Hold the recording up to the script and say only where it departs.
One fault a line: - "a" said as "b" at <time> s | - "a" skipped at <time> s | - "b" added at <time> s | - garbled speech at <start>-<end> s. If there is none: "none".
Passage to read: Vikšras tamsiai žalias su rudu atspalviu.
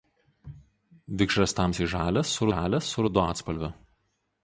- "žalias su" added at 2.5 s